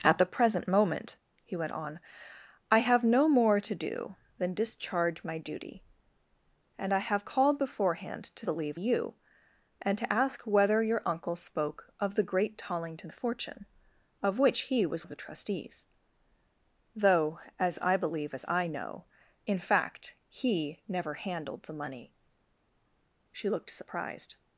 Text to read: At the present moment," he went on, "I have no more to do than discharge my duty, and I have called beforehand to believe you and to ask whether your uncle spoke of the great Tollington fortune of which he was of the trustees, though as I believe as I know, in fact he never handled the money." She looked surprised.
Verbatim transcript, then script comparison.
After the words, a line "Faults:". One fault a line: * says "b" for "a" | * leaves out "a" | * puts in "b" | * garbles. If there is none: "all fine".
At the present moment," he went on, "I have no more to do than discharge my duty, and I have called beforehand to believe you and to ask whether your uncle spoke of the great Tollington fortune of which he was of the trustees, though as I believe as I know, in fact he never handled the money." She looked surprised.
Faults:
all fine